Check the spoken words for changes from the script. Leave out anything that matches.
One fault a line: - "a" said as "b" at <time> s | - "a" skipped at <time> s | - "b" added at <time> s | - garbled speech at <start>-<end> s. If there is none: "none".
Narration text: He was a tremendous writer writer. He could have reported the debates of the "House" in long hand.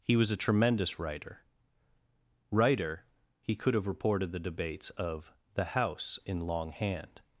none